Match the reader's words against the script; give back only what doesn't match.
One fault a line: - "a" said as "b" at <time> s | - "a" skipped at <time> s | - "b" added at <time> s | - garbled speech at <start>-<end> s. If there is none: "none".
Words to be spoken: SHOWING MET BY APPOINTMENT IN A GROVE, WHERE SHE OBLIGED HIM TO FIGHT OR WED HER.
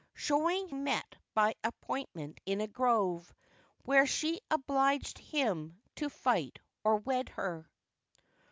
none